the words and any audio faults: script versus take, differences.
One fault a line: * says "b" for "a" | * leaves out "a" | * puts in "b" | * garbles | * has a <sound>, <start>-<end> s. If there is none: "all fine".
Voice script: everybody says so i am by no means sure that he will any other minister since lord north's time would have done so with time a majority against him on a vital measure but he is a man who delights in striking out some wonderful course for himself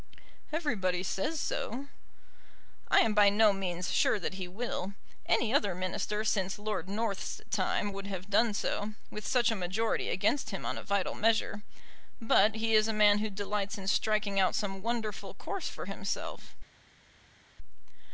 * says "such" for "time"